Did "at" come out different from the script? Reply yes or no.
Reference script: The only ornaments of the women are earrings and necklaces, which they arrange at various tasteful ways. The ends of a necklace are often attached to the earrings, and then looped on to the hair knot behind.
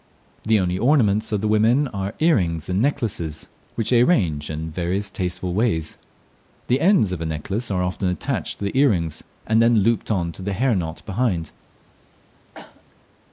yes